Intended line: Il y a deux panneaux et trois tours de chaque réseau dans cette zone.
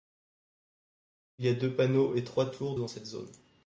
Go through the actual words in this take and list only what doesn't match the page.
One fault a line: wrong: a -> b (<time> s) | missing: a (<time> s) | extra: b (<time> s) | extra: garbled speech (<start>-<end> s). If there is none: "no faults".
missing: de chaque réseau (2.8 s)